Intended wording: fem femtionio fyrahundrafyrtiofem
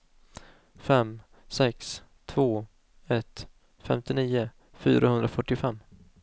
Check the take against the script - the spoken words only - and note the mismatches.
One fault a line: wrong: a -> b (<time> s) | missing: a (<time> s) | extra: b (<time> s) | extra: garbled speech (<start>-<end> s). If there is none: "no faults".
extra: sex två ett (1.5 s)